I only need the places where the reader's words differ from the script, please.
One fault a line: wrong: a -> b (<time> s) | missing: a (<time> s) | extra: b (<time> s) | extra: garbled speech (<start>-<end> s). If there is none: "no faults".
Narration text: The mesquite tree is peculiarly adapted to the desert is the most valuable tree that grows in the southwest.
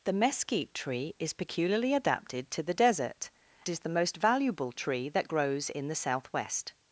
no faults